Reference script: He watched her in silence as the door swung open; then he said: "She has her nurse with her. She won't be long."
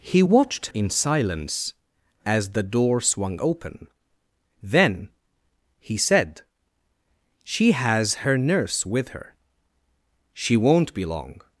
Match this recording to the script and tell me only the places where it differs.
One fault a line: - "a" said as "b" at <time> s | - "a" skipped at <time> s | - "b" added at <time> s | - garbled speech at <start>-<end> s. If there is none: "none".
- "her" skipped at 0.7 s